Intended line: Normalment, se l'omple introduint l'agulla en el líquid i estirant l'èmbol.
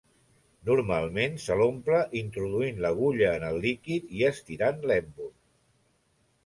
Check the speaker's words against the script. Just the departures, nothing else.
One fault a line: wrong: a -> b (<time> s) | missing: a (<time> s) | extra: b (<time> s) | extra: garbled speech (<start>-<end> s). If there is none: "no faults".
no faults